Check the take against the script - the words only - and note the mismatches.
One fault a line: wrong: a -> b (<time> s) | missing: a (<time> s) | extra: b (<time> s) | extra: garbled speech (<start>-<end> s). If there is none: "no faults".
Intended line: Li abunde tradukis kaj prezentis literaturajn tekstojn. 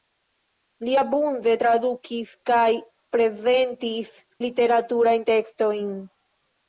no faults